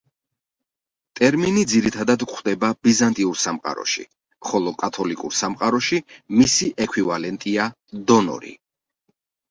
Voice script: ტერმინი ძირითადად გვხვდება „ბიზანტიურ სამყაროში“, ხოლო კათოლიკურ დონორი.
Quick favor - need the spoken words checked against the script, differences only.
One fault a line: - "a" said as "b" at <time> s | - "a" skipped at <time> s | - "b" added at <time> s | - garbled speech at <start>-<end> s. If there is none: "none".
- "სამყაროში მისი ექვივალენტია" added at 5.4 s